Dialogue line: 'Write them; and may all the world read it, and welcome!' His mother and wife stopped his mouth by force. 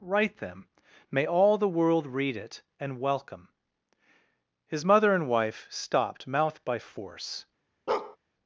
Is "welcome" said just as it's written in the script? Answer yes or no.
yes